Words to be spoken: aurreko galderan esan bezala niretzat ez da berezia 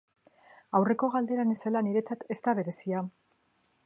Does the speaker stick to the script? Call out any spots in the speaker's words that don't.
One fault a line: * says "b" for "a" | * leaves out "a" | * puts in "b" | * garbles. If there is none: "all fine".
* leaves out "esan"